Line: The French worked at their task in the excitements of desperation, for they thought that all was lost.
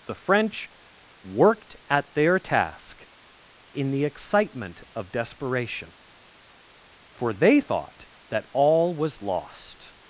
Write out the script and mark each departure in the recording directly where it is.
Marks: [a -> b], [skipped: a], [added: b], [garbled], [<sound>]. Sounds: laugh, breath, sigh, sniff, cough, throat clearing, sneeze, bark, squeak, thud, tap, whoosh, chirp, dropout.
The French worked at their task in the [excitements -> excitement] of desperation, for they thought that all was lost.